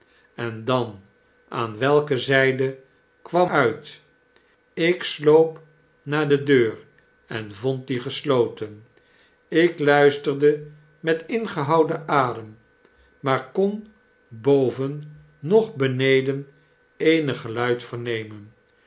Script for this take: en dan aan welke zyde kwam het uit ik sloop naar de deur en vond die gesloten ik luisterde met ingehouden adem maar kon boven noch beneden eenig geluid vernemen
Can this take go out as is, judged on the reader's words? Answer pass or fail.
fail